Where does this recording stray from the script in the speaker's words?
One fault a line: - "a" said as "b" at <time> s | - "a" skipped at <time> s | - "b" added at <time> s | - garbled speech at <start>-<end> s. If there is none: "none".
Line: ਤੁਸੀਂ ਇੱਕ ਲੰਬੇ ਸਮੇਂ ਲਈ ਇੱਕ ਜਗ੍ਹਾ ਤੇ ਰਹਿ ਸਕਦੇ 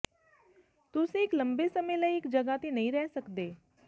- "ਨਹੀਂ" added at 2.7 s